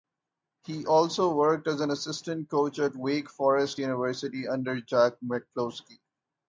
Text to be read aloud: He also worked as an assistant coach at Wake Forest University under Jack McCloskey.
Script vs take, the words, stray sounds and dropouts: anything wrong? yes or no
no